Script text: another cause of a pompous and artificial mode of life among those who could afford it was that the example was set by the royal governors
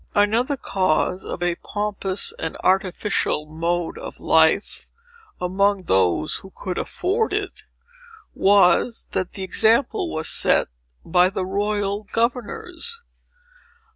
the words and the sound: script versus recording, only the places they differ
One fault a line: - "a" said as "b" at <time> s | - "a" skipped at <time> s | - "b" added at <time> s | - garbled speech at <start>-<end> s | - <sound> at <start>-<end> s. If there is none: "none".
none